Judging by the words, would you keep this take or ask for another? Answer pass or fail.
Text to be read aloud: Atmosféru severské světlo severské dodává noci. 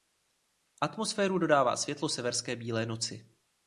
fail